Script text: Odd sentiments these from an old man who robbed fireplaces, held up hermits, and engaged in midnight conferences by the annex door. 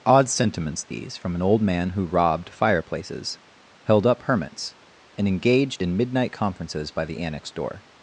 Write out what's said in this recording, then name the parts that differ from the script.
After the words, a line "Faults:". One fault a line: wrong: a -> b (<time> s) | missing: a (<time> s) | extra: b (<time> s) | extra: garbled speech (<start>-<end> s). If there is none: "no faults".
Odd sentiments these from an old man who robbed fireplaces, held up hermits, and engaged in midnight conferences by the annex door.
Faults:
no faults